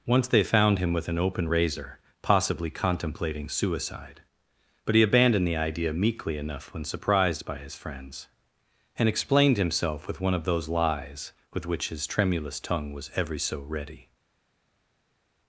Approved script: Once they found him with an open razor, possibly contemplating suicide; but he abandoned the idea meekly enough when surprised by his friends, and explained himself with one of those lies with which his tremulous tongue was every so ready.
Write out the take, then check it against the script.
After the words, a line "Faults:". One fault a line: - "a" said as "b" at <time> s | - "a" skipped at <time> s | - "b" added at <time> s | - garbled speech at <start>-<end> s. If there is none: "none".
Once they found him with an open razor, possibly contemplating suicide; but he abandoned the idea meekly enough when surprised by his friends, and explained himself with one of those lies with which his tremulous tongue was every so ready.
Faults:
none